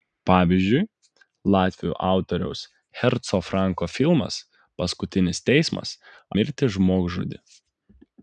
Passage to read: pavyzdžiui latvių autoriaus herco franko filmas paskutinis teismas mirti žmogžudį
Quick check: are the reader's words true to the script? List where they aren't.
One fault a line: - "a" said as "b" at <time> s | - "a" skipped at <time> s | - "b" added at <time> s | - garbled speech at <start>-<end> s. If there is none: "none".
none